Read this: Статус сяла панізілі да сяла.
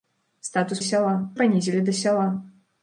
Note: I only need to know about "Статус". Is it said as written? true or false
true